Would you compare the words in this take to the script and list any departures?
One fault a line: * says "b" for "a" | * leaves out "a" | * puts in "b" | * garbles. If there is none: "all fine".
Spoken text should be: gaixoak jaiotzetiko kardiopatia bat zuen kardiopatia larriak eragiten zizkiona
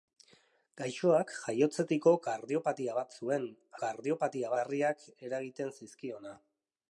all fine